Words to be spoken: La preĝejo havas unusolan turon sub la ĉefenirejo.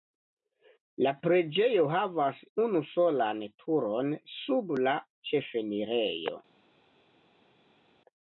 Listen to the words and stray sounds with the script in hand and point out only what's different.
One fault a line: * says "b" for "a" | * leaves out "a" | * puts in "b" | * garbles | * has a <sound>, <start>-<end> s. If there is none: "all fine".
all fine